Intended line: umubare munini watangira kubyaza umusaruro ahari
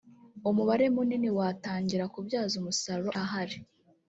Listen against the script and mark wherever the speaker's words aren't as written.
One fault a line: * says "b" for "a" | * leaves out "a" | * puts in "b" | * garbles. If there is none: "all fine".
all fine